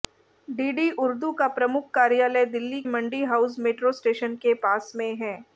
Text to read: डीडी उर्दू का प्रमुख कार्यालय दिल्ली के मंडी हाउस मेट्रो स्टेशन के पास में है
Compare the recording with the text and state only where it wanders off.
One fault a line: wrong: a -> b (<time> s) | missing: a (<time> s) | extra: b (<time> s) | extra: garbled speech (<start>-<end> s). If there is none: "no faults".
missing: के (2.8 s)